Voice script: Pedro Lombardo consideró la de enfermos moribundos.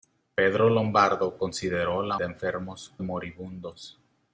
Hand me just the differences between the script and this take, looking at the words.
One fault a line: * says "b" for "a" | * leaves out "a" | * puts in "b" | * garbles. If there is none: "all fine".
all fine